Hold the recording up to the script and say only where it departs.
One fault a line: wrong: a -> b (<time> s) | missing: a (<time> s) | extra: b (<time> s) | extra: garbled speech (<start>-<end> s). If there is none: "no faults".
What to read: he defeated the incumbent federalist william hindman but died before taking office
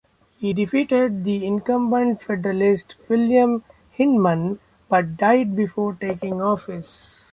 no faults